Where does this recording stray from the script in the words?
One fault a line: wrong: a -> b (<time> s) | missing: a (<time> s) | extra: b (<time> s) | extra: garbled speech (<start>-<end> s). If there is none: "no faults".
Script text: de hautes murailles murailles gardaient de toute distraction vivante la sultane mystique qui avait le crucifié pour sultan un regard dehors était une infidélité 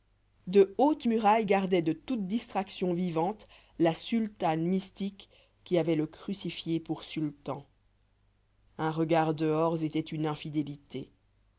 missing: murailles (1.4 s)